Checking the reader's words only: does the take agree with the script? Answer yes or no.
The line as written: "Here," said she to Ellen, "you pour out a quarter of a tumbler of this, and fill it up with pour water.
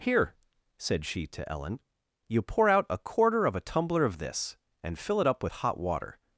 no